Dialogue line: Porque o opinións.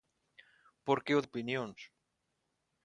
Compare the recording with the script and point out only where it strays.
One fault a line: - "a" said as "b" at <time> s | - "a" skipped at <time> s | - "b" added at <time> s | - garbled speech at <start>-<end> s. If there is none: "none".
none